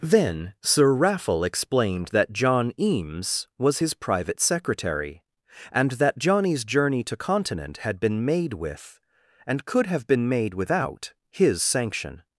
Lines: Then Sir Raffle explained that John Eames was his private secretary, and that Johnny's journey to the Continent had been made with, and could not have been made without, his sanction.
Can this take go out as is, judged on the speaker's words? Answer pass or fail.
fail